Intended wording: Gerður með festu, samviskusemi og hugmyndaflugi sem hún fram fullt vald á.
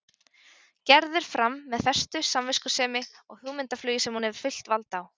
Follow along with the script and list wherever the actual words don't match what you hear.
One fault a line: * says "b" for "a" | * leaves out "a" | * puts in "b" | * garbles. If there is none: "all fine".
* puts in "fram"
* says "hefur" for "fram"